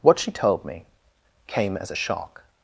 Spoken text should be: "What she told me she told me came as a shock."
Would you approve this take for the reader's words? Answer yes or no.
no